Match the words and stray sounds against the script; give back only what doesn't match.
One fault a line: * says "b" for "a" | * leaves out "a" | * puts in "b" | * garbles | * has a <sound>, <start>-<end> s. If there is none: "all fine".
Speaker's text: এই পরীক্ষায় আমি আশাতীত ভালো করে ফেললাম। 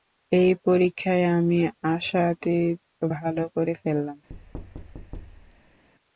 * has a thud, 4.3-5.8 s